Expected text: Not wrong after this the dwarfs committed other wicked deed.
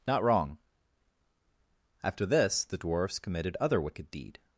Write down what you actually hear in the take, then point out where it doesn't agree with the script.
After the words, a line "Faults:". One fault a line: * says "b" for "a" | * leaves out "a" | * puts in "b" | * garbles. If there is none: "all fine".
Not wrong after this the dwarfs committed other wicked deed.
Faults:
all fine